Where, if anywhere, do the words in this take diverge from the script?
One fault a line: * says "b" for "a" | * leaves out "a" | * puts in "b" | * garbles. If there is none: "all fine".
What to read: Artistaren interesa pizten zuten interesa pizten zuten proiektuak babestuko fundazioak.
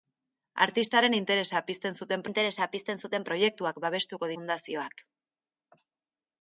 all fine